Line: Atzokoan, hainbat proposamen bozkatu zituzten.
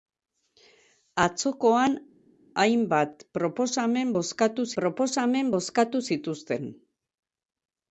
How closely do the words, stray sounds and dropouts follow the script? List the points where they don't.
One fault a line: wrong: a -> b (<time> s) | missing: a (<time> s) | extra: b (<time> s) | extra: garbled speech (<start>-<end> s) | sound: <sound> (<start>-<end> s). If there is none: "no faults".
extra: proposamen bozkatu (4.8 s)